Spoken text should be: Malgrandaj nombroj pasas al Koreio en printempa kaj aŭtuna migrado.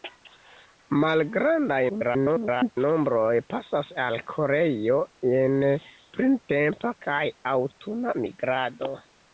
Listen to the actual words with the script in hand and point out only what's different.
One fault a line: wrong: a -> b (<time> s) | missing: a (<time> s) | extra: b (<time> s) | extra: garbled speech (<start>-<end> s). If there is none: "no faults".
extra: garbled speech (1.9-2.8 s)